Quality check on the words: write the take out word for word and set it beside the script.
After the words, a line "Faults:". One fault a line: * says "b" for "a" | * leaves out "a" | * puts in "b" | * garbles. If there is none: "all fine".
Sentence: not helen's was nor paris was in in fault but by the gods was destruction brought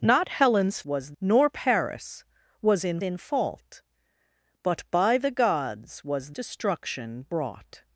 not helen's was nor paris was in in fault but by the gods was destruction brought
Faults:
all fine